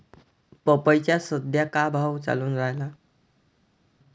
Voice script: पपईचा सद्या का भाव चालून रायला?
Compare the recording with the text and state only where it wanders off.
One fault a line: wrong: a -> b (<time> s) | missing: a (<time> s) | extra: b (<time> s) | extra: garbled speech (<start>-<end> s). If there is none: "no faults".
no faults